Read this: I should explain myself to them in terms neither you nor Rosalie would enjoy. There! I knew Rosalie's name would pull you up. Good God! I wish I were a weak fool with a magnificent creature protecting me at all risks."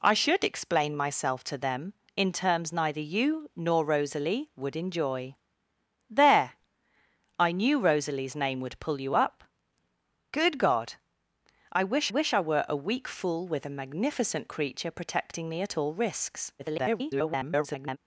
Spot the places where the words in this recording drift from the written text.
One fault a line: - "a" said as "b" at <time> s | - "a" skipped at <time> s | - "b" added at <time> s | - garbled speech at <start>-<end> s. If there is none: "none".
- "wish" added at 12.1 s
- garbled speech at 16.6-18.0 s